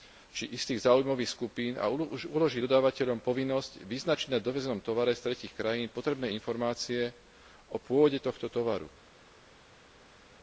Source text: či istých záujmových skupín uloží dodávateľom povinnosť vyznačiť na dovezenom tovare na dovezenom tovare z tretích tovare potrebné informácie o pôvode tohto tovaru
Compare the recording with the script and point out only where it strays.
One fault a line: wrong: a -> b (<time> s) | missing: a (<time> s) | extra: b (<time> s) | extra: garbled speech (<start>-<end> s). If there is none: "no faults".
extra: a (1.8 s)
missing: na dovezenom tovare (5.2 s)
wrong: tovare -> krajín (5.6 s)